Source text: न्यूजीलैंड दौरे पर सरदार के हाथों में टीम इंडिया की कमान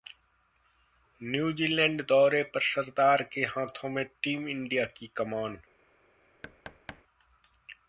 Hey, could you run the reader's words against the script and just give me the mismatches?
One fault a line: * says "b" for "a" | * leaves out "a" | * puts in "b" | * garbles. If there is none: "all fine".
all fine